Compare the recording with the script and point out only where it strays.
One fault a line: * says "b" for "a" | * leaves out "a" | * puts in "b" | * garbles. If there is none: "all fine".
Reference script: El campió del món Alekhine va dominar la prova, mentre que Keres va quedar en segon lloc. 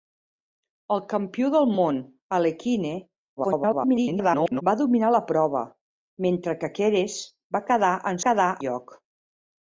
* garbles
* says "quedar" for "segon"